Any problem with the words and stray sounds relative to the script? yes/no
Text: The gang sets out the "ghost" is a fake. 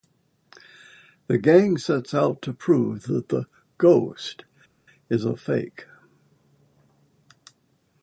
yes